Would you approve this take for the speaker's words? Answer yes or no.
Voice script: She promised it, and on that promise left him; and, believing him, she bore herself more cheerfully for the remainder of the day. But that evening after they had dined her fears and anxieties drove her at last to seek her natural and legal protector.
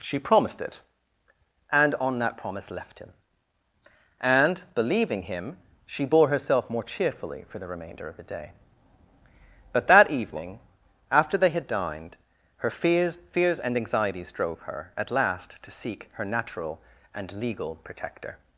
no